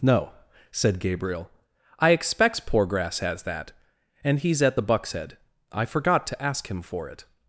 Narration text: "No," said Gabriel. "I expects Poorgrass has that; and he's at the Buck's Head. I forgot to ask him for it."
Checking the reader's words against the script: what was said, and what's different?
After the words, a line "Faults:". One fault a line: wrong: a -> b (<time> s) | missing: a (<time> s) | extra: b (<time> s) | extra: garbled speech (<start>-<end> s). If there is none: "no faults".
"No," said Gabriel. "I expects Poorgrass has that; and he's at the Buck's Head. I forgot to ask him for it."
Faults:
no faults